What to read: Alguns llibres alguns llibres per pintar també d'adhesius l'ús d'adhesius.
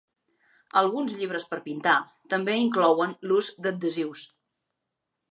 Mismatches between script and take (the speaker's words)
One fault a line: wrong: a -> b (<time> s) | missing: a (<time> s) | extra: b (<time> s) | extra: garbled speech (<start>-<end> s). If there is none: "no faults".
missing: alguns llibres (1.4 s)
wrong: d'adhesius -> inclouen (2.6 s)